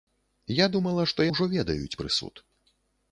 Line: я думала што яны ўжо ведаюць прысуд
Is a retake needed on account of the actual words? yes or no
yes